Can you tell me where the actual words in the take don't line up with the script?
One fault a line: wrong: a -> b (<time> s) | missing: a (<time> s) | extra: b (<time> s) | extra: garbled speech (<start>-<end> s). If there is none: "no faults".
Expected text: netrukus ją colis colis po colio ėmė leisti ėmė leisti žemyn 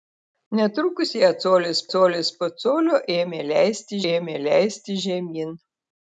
no faults